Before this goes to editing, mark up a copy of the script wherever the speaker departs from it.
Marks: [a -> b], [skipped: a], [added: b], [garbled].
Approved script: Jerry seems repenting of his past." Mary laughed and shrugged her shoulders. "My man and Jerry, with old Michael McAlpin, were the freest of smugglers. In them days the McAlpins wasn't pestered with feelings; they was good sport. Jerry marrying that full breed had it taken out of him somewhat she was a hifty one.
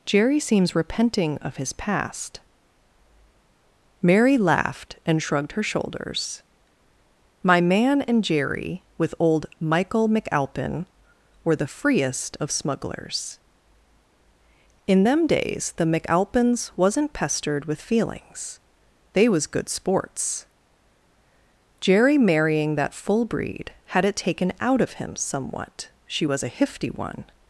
Jerry seems repenting of his past." Mary laughed and shrugged her shoulders. "My man and Jerry, with old Michael McAlpin, were the freest of smugglers. In them days the McAlpins wasn't pestered with feelings; they was good [sport. -> sports] Jerry marrying that full breed had it taken out of him somewhat she was a hifty one.